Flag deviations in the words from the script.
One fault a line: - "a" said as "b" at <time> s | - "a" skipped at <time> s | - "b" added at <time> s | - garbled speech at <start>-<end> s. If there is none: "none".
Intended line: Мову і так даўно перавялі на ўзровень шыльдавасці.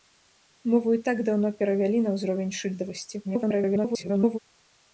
- garbled speech at 3.2-4.4 s